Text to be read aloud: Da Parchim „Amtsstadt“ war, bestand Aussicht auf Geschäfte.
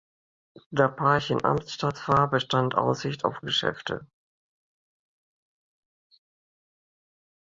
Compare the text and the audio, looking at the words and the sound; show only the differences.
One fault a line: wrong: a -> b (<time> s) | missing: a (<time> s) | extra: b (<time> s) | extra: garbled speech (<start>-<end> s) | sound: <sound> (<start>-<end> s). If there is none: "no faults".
no faults